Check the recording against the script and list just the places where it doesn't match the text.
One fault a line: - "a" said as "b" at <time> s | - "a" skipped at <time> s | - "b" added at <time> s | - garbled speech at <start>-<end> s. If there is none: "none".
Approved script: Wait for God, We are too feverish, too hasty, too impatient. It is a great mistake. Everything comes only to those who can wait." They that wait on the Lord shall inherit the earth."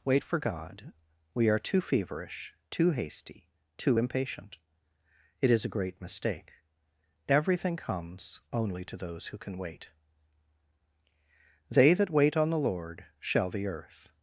- "inherit" skipped at 13.5 s